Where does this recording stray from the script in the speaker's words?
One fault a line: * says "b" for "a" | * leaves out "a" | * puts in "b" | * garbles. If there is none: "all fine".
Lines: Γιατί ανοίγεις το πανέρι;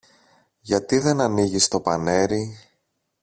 * puts in "δεν"